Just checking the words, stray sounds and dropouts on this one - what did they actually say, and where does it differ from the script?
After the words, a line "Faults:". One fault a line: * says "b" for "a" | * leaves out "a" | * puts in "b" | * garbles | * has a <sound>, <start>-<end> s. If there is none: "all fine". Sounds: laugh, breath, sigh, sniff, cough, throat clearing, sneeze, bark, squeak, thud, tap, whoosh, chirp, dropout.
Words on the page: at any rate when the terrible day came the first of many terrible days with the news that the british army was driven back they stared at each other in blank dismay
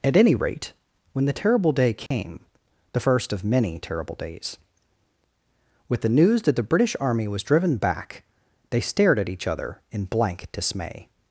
at any rate when the terrible day came the first of many terrible days with the news that the british army was driven back they stared at each other in blank dismay
Faults:
* has a dropout, 2.1-2.1 s